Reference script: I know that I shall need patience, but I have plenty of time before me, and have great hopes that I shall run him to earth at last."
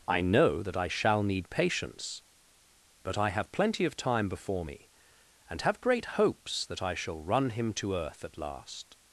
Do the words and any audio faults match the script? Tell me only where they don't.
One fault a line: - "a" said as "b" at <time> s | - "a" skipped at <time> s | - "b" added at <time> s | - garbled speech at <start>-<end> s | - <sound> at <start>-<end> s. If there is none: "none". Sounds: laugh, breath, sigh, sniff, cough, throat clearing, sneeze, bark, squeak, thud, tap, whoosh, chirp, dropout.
none